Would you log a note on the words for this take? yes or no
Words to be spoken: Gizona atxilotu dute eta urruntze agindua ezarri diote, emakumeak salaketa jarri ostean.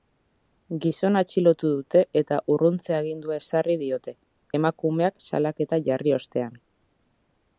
no